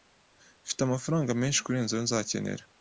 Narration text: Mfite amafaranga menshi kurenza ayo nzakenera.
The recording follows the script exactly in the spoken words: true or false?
true